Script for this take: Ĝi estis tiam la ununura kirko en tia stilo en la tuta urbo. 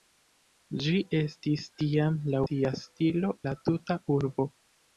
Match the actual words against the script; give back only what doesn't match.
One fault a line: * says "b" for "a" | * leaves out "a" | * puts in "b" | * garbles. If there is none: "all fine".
* leaves out "ununura kirko en"
* leaves out "en"